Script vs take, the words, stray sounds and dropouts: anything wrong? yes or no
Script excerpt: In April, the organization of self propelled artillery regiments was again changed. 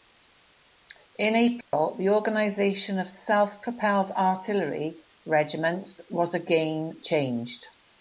yes